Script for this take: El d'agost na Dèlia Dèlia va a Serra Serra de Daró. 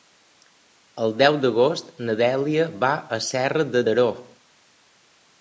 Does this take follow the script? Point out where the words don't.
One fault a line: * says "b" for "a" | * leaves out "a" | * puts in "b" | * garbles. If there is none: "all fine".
* puts in "deu"
* leaves out "Dèlia"
* leaves out "Serra"